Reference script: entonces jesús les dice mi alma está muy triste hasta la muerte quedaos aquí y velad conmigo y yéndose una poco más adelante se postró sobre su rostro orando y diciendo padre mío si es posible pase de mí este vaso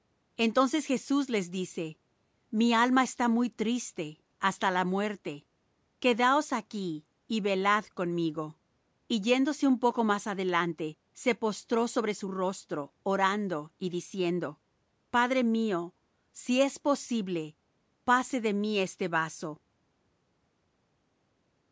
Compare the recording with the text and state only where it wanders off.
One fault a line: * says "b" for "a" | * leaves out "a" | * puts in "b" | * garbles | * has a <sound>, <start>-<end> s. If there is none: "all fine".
* says "un" for "una"